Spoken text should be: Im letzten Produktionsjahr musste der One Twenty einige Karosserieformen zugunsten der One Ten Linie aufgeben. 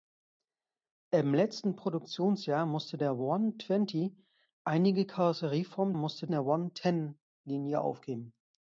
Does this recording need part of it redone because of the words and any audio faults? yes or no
yes